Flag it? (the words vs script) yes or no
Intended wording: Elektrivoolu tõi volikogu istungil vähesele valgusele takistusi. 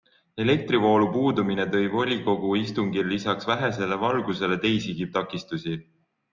yes